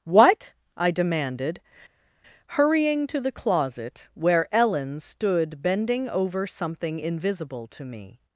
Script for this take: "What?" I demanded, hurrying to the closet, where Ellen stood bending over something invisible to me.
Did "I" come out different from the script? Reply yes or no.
no